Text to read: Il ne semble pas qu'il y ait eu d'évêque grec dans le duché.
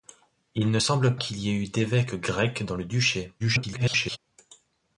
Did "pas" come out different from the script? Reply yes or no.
yes